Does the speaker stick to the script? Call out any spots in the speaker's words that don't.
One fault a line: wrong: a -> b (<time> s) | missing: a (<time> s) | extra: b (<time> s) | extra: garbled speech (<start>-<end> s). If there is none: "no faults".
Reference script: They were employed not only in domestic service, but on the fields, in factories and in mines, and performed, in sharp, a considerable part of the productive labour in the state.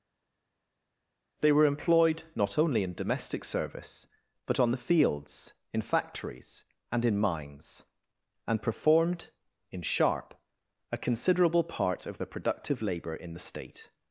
no faults